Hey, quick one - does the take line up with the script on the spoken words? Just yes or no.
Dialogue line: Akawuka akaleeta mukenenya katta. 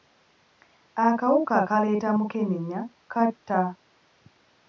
yes